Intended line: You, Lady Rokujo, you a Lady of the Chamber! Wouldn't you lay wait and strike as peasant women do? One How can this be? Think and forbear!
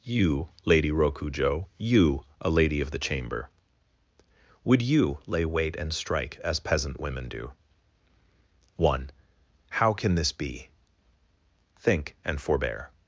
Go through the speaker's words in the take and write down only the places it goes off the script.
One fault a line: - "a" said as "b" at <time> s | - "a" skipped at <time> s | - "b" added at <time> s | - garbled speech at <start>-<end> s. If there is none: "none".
- "Wouldn't" said as "Would" at 4.6 s